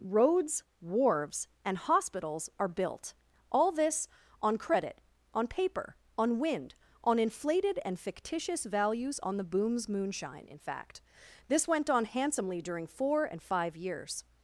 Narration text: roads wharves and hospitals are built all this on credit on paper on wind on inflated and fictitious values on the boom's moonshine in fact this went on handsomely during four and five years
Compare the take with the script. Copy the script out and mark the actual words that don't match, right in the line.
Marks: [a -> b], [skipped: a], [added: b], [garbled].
roads wharves and hospitals are built all this on credit on paper on wind on inflated and fictitious values on the boom's moonshine in fact this went on handsomely during four and five years